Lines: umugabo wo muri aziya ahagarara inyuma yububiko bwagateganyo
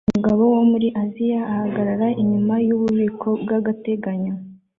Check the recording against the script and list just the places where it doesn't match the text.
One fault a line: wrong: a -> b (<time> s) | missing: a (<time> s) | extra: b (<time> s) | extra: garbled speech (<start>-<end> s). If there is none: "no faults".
no faults